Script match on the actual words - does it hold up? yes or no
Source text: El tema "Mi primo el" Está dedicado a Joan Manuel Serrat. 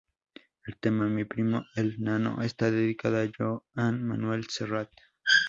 no